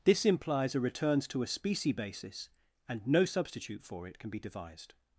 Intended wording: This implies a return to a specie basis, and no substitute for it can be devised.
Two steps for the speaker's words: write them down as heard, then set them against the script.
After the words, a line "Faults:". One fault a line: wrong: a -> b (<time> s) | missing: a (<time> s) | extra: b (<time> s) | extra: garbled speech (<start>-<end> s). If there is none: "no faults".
This implies a returns to a specie basis, and no substitute for it can be devised.
Faults:
wrong: return -> returns (0.8 s)